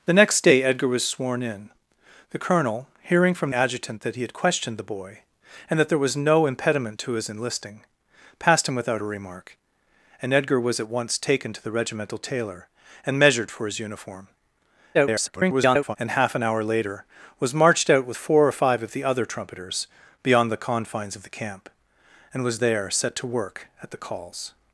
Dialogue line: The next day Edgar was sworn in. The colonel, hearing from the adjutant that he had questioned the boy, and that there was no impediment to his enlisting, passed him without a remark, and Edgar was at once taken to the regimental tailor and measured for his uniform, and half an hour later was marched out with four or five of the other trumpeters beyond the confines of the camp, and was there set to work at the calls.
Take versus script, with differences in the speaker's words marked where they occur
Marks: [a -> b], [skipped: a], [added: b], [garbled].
The next day Edgar was sworn in. The colonel, hearing from [skipped: the] adjutant that he had questioned the boy, and that there was no impediment to his enlisting, passed him without a remark, and Edgar was at once taken to the regimental tailor and measured for his uniform, [garbled] and half an hour later was marched out with four or five of the other trumpeters beyond the confines of the camp, and was there set to work at the calls.